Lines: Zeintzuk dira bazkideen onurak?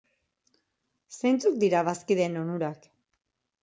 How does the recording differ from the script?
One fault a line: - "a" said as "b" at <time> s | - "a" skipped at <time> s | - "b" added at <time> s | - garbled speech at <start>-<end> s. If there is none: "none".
none